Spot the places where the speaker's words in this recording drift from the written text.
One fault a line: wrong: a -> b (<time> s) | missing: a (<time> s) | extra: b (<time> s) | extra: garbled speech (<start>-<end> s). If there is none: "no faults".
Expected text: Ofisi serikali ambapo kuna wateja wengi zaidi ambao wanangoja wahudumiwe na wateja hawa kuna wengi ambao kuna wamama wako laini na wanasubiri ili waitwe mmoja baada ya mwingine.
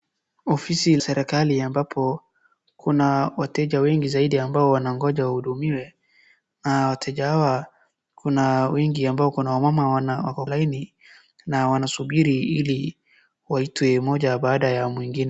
no faults